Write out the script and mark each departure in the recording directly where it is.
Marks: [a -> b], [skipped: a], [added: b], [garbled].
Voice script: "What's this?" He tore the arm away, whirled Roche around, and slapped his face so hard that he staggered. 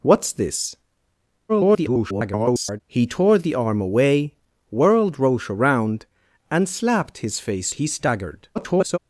"What's this?" [garbled] He tore the arm away, whirled Roche around, and slapped his face [skipped: so hard that] he staggered. [garbled]